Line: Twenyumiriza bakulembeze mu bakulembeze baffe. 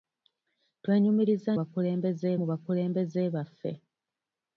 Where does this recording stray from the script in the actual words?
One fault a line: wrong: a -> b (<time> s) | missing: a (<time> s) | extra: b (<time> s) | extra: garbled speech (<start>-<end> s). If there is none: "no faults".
no faults